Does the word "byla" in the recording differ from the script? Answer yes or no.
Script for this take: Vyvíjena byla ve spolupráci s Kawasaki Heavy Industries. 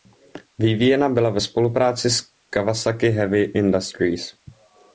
no